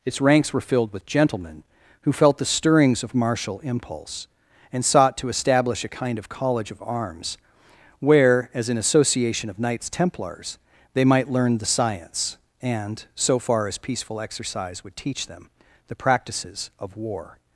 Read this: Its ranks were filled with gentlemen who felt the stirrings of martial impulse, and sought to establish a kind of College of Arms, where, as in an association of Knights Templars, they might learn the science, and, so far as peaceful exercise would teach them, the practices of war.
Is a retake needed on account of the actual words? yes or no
yes